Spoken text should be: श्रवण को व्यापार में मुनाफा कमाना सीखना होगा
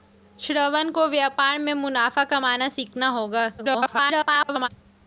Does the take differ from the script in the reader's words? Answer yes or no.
yes